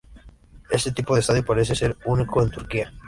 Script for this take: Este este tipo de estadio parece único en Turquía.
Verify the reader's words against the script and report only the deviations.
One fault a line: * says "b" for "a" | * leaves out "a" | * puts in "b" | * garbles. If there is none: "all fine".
* leaves out "este"
* puts in "ser"